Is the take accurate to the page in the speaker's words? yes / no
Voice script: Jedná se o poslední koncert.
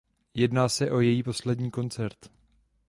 no